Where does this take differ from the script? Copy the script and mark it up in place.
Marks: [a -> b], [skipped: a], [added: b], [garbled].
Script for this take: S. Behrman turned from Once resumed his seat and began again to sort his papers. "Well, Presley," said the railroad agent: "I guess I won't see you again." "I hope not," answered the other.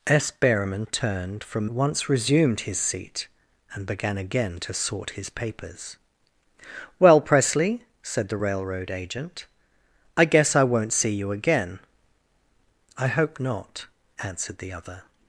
S. Behrman turned from Once resumed his seat and began again to sort his papers. "Well, Presley," said the railroad agent: "I guess I won't see you again." "I hope not," answered the other.